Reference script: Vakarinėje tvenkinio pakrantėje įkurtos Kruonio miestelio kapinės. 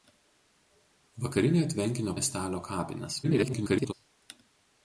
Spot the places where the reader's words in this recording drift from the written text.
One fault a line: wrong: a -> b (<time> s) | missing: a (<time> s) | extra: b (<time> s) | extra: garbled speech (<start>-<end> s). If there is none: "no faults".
missing: pakrantėje įkurtos Kruonio (2.1 s)
extra: garbled speech (3.2-3.9 s)